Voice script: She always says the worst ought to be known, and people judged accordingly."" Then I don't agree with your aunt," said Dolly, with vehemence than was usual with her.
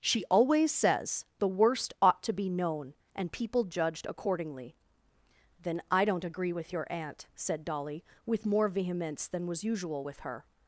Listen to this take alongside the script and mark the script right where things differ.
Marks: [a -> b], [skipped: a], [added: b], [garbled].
She always says the worst ought to be known, and people judged accordingly."" Then I don't agree with your aunt," said Dolly, with [added: more] vehemence than was usual with her.